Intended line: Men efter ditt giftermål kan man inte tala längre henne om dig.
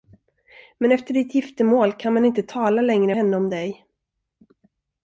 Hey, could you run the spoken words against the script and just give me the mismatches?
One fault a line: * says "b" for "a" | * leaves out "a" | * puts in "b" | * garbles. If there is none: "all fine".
all fine